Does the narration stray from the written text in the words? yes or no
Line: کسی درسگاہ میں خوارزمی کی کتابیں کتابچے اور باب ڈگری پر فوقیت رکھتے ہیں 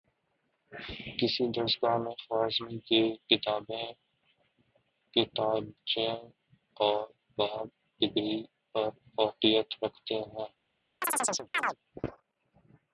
no